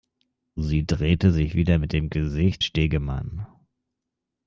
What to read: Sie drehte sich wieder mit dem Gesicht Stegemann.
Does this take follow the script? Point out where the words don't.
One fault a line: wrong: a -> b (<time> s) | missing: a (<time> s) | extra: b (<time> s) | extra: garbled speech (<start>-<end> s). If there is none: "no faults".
no faults